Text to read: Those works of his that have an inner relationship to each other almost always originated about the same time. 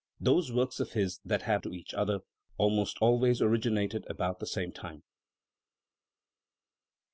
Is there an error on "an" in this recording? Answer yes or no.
yes